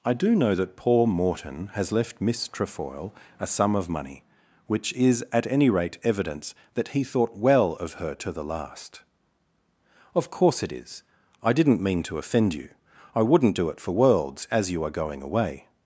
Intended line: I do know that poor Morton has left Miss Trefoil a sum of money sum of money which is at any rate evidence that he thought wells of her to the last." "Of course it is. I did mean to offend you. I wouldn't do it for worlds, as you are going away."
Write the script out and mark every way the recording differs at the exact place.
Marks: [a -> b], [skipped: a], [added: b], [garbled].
I do know that poor Morton has left Miss Trefoil a sum of money [skipped: sum of money] which is at any rate evidence that he thought [wells -> well] of her to the last." "Of course it is. I [did -> didn't] mean to offend you. I wouldn't do it for worlds, as you are going away."